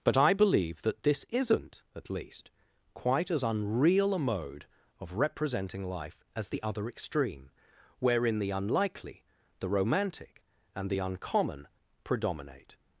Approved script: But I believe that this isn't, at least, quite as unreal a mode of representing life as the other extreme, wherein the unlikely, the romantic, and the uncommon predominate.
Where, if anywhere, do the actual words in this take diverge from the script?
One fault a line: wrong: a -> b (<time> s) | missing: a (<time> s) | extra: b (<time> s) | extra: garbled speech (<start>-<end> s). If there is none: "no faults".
no faults